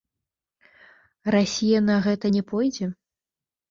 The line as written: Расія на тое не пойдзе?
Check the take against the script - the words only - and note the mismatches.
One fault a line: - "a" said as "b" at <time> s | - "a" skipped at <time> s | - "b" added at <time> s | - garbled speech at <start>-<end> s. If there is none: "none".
- "тое" said as "гэта" at 2.0 s